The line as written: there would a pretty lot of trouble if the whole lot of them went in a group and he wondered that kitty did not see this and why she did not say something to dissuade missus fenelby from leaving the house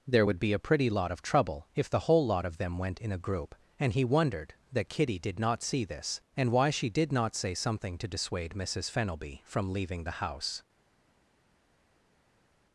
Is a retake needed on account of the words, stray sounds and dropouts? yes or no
yes